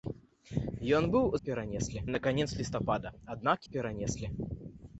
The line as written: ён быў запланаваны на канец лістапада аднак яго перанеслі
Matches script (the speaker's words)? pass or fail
fail